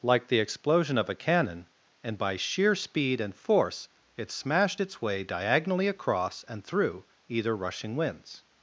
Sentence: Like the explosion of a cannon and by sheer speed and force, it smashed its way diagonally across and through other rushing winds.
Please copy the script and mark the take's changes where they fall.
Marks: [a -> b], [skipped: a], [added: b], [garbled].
Like the explosion of a cannon and by sheer speed and force, it smashed its way diagonally across and through [other -> either] rushing winds.